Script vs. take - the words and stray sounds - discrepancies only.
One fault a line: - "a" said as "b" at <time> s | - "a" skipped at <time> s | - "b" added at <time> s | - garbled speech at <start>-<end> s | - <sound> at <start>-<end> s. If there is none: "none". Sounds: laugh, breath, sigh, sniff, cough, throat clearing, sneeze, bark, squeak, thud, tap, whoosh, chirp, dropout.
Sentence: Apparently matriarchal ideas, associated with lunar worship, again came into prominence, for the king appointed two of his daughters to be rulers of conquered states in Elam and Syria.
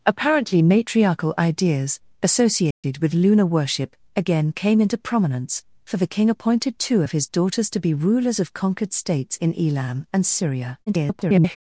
- dropout at 2.7-2.8 s
- garbled speech at 10.9-11.6 s